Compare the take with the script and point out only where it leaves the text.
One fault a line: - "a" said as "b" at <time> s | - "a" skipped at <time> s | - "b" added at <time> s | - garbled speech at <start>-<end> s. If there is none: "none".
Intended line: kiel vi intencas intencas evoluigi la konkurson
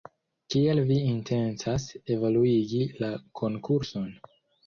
- "intencas" skipped at 1.9 s